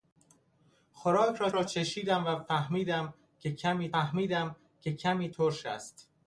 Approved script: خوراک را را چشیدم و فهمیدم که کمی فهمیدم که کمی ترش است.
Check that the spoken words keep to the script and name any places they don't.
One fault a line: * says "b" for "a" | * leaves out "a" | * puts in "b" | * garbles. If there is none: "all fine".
all fine